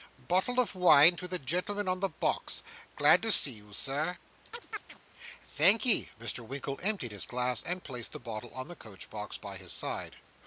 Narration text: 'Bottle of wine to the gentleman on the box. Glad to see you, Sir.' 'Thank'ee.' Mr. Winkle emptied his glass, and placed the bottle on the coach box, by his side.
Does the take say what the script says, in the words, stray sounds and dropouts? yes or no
no